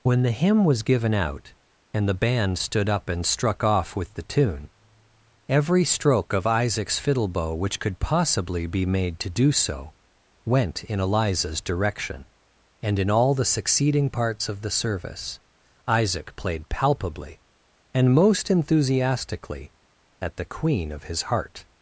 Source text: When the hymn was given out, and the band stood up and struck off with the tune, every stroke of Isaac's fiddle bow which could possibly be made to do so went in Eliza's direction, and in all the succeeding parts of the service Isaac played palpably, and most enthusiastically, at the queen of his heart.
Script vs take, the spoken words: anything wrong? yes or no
no